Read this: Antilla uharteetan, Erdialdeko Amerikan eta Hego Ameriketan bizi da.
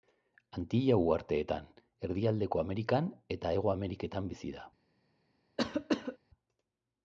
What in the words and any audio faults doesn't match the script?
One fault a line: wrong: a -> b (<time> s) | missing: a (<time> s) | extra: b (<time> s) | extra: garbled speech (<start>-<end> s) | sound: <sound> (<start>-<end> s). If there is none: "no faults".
sound: cough (5.6-6.2 s)